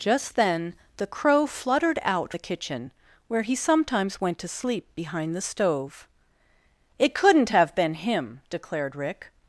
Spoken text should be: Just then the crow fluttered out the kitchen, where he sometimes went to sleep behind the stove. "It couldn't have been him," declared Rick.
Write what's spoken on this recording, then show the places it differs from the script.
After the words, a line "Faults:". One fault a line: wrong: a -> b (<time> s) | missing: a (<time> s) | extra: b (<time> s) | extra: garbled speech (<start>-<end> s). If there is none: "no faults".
Just then the crow fluttered out the kitchen, where he sometimes went to sleep behind the stove. "It couldn't have been him," declared Rick.
Faults:
no faults